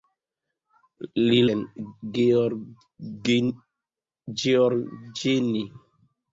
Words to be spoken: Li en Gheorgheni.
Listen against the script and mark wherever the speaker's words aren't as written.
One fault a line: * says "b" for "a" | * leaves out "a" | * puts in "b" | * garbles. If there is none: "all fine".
all fine